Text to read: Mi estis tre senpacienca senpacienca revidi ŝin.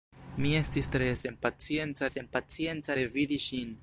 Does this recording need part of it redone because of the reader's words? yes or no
no